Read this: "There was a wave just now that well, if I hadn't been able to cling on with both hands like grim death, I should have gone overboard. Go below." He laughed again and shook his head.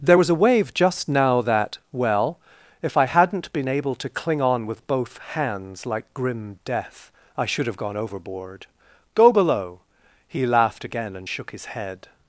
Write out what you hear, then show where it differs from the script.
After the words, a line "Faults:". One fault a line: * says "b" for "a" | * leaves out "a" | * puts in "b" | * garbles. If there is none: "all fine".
"There was a wave just now that well, if I hadn't been able to cling on with both hands like grim death, I should have gone overboard. Go below." He laughed again and shook his head.
Faults:
all fine